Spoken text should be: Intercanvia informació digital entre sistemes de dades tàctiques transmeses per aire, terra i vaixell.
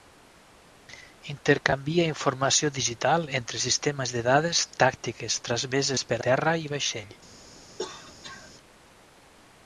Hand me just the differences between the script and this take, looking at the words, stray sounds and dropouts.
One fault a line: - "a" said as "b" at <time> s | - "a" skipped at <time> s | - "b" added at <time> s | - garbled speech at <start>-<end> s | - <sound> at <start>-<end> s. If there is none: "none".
- "aire" skipped at 6.2 s
- cough at 7.8-8.5 s